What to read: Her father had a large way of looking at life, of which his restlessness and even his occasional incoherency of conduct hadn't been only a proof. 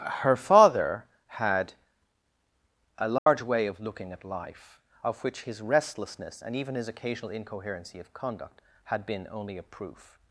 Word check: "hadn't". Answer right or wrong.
wrong